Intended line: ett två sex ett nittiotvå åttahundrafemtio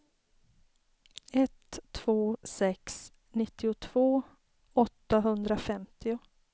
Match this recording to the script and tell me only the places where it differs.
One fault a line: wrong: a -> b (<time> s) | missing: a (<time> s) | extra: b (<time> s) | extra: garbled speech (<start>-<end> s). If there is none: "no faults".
missing: ett (3.1 s)